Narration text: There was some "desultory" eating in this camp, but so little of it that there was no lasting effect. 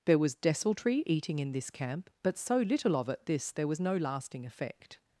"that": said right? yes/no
no